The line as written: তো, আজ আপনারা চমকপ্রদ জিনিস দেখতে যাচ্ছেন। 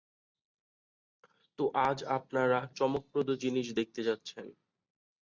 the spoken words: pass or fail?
pass